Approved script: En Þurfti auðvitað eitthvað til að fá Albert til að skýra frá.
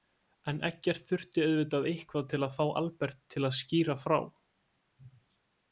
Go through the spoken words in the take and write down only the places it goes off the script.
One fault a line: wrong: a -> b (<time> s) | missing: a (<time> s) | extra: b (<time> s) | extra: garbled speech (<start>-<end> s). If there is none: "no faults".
extra: Eggert (0.7 s)